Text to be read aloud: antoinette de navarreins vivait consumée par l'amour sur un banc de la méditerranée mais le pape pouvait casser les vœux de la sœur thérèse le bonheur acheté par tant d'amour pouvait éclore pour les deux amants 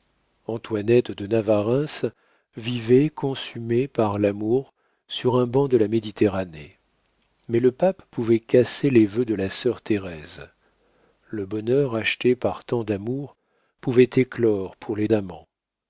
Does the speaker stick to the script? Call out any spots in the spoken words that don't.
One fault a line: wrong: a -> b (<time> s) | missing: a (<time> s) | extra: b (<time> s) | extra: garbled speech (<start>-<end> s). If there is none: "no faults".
missing: deux (15.1 s)